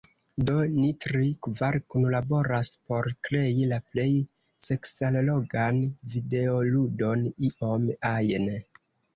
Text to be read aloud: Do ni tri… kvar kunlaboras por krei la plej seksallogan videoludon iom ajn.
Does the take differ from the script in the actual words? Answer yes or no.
no